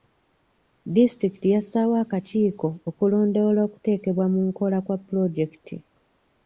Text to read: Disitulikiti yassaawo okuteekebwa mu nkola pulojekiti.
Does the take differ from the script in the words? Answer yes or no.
yes